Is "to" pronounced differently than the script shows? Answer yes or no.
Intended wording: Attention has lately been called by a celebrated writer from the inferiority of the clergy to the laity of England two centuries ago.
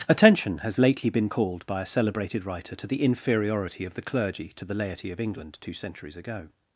no